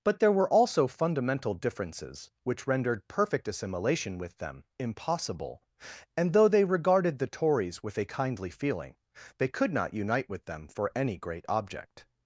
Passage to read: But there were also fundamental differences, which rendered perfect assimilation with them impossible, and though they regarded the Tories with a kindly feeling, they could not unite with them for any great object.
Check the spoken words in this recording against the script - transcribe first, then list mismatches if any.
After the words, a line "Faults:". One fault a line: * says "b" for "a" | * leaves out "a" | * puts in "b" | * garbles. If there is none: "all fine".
But there were also fundamental differences, which rendered perfect assimilation with them impossible, and though they regarded the Tories with a kindly feeling, they could not unite with them for any great object.
Faults:
all fine